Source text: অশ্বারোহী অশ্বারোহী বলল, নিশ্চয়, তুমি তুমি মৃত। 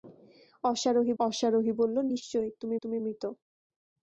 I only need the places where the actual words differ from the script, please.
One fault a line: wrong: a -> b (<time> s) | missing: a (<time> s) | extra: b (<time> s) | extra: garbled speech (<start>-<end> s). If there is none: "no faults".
no faults